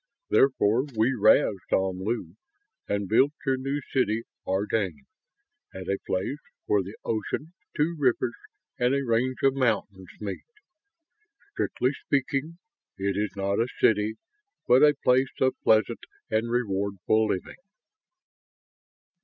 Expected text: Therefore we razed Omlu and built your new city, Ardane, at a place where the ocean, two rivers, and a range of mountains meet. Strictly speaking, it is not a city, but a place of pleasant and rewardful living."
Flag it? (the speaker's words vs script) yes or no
no